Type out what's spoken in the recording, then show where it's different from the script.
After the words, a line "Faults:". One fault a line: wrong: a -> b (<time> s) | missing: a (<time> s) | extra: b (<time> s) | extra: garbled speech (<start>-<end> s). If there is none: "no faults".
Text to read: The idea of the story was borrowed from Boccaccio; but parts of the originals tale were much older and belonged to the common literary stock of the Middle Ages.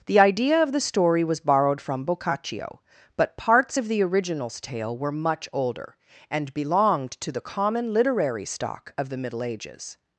The idea of the story was borrowed from Boccaccio; but parts of the originals tale were much older and belonged to the common literary stock of the Middle Ages.
Faults:
no faults